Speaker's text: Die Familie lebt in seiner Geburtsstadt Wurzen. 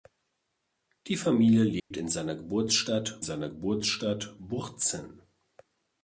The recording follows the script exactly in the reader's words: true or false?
false